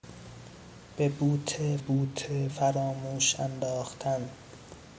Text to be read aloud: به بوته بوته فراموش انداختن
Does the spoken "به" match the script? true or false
true